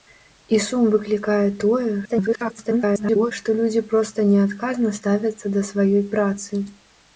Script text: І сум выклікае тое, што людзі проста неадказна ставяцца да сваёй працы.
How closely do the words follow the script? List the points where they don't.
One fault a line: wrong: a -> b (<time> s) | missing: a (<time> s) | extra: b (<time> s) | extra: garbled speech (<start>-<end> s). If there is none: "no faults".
extra: garbled speech (2.0-3.3 s)